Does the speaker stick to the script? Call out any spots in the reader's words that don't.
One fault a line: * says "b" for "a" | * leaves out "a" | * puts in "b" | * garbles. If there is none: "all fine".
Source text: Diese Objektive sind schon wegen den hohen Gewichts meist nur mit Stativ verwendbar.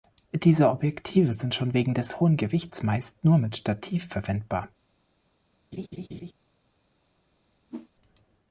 * says "des" for "den"